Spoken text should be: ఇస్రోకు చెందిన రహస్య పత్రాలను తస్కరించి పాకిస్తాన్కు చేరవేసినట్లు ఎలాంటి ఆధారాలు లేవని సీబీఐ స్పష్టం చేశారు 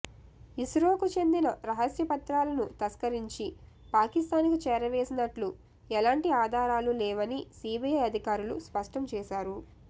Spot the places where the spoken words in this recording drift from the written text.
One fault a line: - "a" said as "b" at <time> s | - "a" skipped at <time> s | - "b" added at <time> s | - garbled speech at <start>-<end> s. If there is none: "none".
- "అధికారులు" added at 8.1 s